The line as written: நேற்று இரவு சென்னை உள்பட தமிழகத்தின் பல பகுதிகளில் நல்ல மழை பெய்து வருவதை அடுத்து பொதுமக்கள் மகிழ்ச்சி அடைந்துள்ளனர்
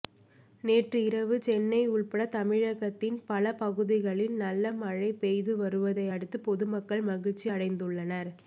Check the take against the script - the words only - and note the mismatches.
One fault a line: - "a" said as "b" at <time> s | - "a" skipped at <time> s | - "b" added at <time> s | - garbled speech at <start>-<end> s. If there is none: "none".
none